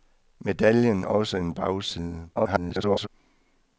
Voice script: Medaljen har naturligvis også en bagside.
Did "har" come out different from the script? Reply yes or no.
yes